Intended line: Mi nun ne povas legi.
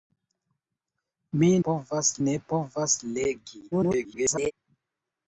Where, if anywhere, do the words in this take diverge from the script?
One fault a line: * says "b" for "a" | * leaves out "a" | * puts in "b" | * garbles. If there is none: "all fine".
* says "povas" for "nun"
* garbles